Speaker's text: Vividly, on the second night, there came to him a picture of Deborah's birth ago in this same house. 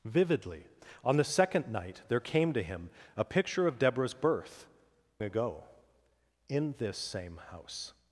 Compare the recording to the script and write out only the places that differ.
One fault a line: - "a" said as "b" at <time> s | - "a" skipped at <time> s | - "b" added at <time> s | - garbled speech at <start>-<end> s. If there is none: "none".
none